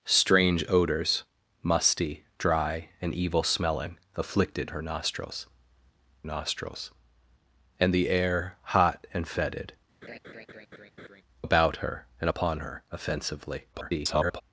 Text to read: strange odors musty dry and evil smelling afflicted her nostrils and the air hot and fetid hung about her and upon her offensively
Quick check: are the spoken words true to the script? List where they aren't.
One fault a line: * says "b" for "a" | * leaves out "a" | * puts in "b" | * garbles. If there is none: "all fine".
* puts in "nostrils"
* leaves out "hung"
* garbles